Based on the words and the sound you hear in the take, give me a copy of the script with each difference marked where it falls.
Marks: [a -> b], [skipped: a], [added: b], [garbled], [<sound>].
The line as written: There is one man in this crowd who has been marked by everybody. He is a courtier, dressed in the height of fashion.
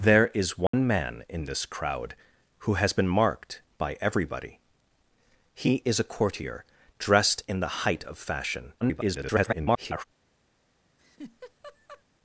There is one [dropout] man in this crowd who has been marked by everybody. He is a courtier, dressed in the height of fashion. [garbled] [laugh]